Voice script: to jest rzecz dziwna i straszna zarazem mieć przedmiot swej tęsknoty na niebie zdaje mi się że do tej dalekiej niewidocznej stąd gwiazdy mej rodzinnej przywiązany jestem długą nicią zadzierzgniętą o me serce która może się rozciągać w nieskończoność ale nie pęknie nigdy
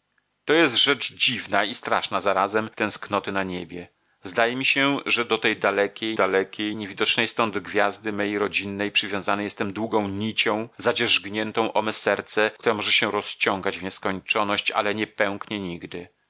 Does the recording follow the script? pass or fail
fail